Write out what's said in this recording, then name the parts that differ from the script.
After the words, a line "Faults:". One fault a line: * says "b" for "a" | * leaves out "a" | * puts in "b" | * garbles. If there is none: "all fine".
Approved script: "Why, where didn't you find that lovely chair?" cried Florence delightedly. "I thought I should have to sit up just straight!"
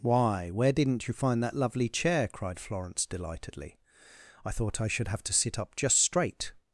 "Why, where didn't you find that lovely chair?" cried Florence delightedly. "I thought I should have to sit up just straight!"
Faults:
all fine